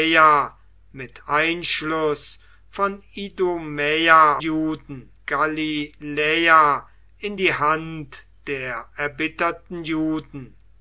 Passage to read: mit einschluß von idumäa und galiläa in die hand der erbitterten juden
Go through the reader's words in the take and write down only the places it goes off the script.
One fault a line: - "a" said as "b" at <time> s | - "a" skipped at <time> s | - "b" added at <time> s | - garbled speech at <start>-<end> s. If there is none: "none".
- "und" said as "juden" at 4.4 s